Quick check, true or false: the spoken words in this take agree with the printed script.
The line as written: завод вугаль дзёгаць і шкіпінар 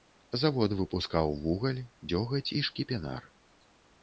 false